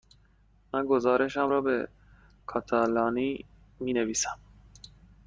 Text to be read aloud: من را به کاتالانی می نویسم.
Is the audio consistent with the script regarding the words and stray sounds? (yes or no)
no